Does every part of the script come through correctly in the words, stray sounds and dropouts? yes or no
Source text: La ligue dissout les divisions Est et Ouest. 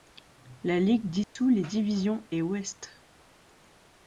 no